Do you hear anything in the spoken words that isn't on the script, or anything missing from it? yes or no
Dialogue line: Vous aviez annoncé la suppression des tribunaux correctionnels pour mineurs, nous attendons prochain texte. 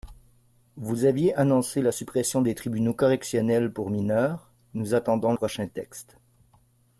no